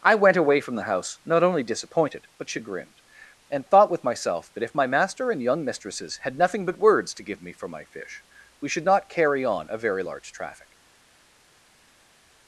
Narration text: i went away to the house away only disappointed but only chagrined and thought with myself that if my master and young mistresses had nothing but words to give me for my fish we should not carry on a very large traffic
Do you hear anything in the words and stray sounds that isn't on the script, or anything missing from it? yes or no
yes